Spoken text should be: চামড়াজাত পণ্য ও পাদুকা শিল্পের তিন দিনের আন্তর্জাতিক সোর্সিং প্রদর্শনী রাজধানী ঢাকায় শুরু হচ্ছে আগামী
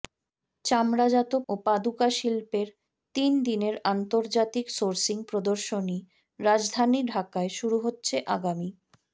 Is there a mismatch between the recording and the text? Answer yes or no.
yes